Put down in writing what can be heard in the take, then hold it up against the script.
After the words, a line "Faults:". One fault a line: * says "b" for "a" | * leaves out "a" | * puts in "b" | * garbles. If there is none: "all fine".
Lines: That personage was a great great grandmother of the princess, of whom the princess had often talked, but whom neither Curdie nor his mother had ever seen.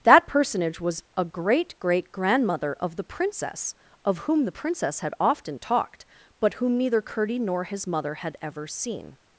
That personage was a great great grandmother of the princess, of whom the princess had often talked, but whom neither Curdie nor his mother had ever seen.
Faults:
all fine